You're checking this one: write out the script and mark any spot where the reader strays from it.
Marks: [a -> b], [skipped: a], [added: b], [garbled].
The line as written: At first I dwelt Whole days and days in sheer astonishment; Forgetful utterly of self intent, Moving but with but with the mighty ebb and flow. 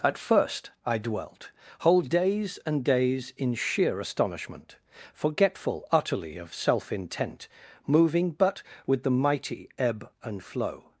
At first I dwelt Whole days and days in sheer astonishment; Forgetful utterly of self intent, Moving but with [skipped: but with] the mighty ebb and flow.